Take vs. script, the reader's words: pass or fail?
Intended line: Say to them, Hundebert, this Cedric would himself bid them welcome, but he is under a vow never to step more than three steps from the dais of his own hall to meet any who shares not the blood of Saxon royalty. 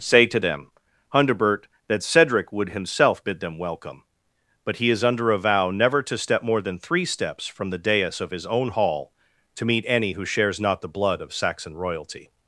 fail